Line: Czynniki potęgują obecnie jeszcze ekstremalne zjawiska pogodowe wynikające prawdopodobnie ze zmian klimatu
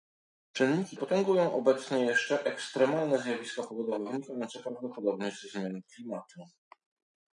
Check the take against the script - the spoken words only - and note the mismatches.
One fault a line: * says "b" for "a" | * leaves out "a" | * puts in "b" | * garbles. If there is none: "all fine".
all fine